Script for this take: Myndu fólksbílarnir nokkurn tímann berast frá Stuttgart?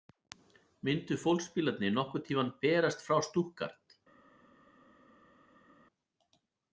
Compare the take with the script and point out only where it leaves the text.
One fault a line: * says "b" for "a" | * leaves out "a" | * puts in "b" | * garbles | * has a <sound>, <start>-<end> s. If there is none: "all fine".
all fine